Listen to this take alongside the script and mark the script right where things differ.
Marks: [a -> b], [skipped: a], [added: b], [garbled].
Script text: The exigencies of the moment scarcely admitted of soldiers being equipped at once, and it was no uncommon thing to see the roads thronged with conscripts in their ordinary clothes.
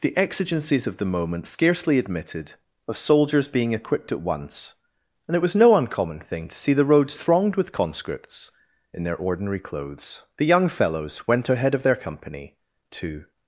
The exigencies of the moment scarcely admitted of soldiers being equipped at once, and it was no uncommon thing to see the roads thronged with conscripts in their ordinary clothes. [added: The young fellows went ahead of their company to]